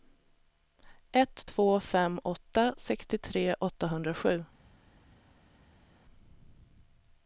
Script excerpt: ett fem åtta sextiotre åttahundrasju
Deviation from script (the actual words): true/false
true